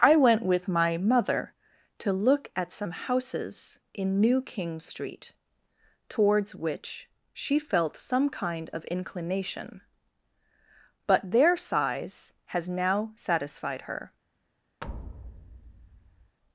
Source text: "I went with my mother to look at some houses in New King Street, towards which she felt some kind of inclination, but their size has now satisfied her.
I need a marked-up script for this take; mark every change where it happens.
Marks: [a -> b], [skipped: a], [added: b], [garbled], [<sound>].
"I went with my mother to look at some houses in New King Street, towards which she felt some kind of inclination, but their size has now satisfied her. [thud]